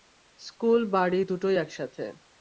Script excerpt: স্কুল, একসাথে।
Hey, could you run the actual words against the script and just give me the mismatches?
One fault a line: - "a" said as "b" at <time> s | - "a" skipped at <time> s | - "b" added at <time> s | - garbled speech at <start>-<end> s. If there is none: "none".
- "বাড়ি দুটোই" added at 0.8 s